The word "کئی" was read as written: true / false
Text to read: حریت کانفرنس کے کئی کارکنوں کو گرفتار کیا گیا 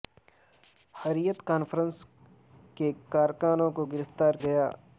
false